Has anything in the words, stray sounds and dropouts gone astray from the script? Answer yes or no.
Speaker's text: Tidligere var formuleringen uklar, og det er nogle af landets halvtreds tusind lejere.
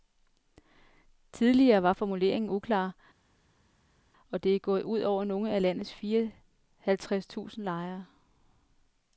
yes